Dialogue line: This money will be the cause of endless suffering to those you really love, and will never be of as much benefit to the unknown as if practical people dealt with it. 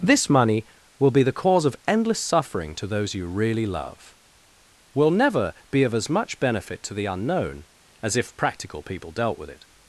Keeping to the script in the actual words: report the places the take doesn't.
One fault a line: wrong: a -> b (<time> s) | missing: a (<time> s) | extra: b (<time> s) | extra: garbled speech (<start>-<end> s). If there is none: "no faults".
missing: and (4.2 s)